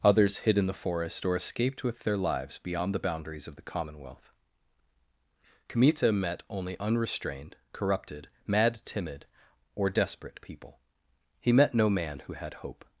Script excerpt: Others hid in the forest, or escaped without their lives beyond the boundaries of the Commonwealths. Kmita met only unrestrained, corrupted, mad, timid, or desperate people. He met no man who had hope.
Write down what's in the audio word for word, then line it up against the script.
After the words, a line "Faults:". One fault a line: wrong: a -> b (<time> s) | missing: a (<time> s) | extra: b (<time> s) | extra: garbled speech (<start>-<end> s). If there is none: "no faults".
Others hid in the forest, or escaped with their lives beyond the boundaries of the Commonwealth. Kmita met only unrestrained, corrupted, mad, timid, or desperate people. He met no man who had hope.
Faults:
wrong: without -> with (1.8 s)
wrong: Commonwealths -> Commonwealth (3.6 s)